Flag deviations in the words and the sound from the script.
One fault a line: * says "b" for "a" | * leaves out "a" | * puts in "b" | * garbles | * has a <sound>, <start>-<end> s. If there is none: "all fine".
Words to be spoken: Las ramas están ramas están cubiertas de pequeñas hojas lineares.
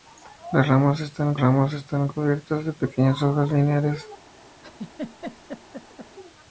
* has a laugh, 4.6-6.2 s